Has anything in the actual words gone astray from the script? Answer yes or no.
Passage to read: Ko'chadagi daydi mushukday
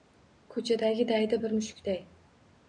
yes